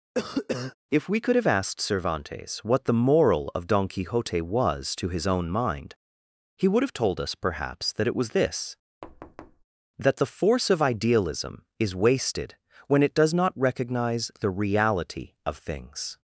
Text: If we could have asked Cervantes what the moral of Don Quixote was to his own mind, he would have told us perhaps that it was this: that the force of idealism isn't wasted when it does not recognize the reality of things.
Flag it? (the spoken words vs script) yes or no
yes